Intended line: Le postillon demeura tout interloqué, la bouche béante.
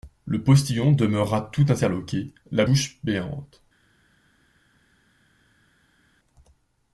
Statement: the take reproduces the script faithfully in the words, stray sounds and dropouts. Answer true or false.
true